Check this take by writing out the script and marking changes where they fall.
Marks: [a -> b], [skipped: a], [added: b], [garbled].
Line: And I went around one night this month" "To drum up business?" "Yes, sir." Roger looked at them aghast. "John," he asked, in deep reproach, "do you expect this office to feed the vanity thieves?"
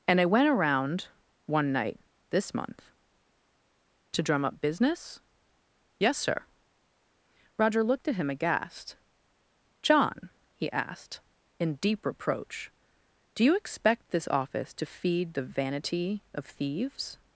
And I went around one night this month" "To drum up business?" "Yes, sir." Roger looked at [them -> him] aghast. "John," he asked, in deep reproach, "do you expect this office to feed the vanity [added: of] thieves?"